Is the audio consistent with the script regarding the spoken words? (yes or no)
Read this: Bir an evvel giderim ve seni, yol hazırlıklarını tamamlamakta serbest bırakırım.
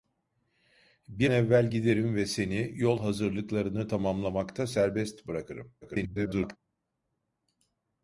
no